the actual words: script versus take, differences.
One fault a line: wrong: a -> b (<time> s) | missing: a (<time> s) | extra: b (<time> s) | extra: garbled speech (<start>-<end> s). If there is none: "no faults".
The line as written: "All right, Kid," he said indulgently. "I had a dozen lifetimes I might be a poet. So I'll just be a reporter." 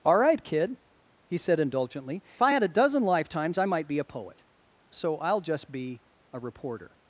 no faults